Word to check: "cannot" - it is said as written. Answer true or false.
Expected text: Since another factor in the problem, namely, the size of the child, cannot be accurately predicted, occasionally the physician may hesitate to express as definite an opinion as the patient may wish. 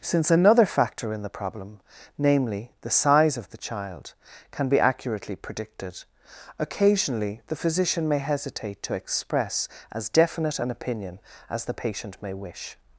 false